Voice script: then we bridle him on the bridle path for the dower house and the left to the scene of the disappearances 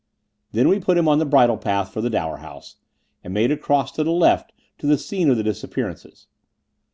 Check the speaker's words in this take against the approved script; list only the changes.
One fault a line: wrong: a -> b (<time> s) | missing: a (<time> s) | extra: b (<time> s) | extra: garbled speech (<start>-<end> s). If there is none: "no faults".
wrong: bridle -> put (0.8 s)
extra: made across to (3.3 s)